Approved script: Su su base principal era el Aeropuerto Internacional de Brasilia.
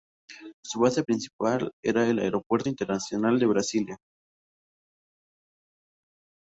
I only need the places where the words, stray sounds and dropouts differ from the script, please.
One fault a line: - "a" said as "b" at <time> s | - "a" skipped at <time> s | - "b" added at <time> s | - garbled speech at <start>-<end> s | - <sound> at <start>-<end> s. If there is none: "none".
- "su" skipped at 0.8 s